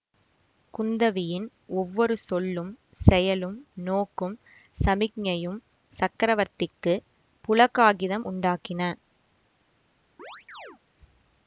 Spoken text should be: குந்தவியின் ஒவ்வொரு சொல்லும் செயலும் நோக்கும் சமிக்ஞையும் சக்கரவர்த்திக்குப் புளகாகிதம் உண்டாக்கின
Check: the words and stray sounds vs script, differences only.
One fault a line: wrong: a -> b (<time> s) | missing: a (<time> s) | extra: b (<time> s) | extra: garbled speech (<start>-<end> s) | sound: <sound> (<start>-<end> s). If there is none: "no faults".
sound: chirp (10.2-10.8 s)